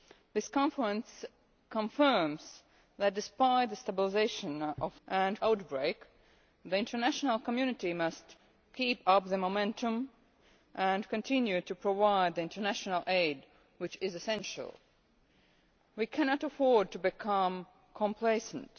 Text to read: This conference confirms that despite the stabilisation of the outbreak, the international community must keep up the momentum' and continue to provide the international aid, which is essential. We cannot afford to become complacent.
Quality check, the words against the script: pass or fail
fail